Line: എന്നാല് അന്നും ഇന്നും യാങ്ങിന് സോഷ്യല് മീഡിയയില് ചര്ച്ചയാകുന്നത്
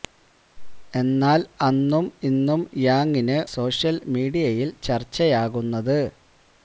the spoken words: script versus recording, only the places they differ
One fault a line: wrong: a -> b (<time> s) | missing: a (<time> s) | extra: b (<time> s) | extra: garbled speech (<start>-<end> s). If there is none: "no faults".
no faults